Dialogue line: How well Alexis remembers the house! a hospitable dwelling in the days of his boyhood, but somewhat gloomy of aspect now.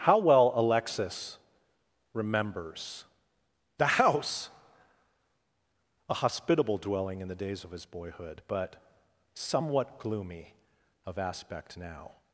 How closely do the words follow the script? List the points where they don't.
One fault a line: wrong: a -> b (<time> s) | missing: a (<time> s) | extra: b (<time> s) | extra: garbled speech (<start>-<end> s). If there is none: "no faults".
no faults